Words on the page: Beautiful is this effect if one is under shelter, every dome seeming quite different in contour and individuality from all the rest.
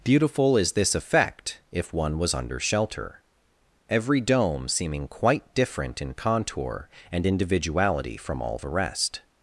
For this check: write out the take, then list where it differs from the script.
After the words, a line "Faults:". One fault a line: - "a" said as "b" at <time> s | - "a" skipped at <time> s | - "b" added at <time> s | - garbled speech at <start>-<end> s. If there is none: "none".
Beautiful is this effect if one was under shelter, every dome seeming quite different in contour and individuality from all the rest.
Faults:
- "is" said as "was" at 2.2 s